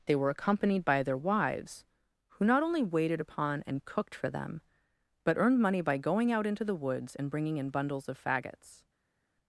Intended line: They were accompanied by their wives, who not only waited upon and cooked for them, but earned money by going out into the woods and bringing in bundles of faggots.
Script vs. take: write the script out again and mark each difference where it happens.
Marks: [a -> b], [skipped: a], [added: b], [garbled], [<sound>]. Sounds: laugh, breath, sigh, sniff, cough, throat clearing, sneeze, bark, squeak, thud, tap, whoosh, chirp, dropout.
They were accompanied by their wives, who not only waited upon and cooked for them, but earned money by going out into the woods and bringing in bundles of faggots.